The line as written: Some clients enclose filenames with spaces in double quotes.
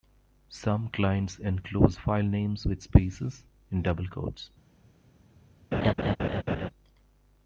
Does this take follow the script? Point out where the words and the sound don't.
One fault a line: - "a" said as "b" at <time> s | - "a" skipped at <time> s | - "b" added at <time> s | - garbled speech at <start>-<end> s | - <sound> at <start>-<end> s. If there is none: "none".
- laugh at 5.7-6.7 s